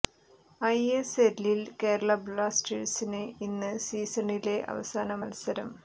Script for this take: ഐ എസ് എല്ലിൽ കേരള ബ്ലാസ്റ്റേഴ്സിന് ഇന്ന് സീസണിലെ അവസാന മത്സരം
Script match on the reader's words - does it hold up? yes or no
yes